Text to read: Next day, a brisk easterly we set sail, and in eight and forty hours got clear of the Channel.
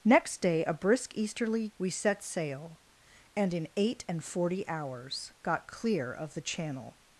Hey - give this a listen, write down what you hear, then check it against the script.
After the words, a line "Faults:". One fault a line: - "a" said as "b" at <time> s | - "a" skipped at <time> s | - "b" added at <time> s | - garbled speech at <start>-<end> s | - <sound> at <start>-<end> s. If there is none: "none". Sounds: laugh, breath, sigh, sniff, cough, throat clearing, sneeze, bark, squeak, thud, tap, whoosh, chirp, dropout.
Next day, a brisk easterly we set sail, and in eight and forty hours got clear of the Channel.
Faults:
none